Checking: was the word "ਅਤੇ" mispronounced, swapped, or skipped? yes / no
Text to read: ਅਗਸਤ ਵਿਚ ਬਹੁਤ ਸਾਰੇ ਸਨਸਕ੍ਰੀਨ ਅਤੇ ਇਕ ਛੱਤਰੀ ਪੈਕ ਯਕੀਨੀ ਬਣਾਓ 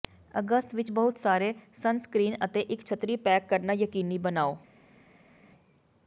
no